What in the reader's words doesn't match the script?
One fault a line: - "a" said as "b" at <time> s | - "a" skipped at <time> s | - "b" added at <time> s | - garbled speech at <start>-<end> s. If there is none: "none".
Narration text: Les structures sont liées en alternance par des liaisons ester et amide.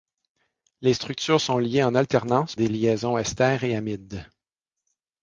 - "par" skipped at 2.5 s